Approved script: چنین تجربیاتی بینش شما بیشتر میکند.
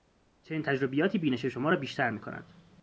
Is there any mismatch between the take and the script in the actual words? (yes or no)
yes